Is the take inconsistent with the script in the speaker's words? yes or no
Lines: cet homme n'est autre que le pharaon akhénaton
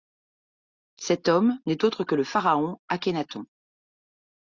no